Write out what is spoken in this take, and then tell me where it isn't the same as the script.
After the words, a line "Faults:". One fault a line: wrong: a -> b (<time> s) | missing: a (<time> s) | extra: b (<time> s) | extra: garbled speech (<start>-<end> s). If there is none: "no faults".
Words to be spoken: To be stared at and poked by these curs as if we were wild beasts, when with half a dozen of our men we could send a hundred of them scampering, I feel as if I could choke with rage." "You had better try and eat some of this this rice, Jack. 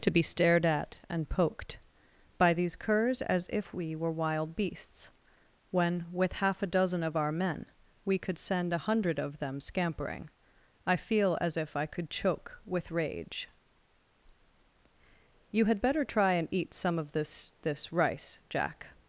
To be stared at and poked by these curs as if we were wild beasts, when with half a dozen of our men we could send a hundred of them scampering, I feel as if I could choke with rage." "You had better try and eat some of this this rice, Jack.
Faults:
no faults